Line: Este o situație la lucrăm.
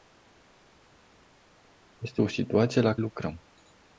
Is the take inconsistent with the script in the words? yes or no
no